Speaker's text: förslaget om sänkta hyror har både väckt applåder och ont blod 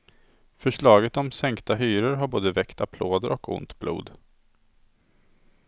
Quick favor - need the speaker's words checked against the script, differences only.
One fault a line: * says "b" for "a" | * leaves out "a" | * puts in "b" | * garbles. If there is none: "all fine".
all fine